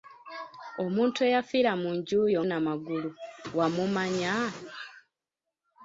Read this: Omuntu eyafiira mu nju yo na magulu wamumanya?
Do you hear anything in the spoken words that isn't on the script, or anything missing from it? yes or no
no